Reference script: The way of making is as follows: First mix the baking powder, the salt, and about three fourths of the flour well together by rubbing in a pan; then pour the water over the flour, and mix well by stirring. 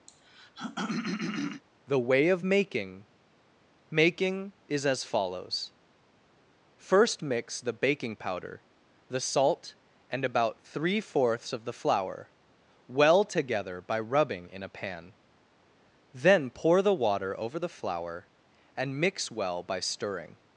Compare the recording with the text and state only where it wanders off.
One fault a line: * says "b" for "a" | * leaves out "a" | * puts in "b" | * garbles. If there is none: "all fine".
* puts in "making"